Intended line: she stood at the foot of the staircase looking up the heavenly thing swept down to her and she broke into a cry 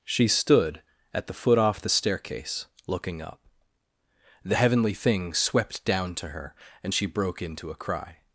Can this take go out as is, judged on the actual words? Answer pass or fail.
fail